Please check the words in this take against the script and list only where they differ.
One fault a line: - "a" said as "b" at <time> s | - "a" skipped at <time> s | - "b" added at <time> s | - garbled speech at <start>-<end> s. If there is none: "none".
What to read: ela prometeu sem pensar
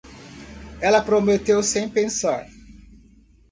none